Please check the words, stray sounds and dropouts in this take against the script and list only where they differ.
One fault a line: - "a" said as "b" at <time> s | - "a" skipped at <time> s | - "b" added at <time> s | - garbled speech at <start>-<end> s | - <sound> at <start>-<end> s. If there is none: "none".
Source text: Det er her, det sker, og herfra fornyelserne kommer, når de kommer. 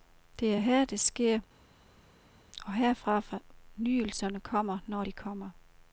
none